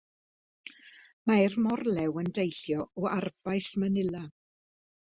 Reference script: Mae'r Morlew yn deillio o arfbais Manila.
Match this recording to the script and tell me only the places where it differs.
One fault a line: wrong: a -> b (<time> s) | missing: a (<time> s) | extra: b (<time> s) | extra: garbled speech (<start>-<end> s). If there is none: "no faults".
no faults